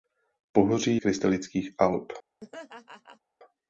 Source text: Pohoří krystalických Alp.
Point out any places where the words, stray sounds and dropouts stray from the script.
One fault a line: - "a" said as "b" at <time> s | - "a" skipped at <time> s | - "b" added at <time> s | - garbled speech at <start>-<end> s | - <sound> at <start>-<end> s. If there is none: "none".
- laugh at 2.4-3.2 s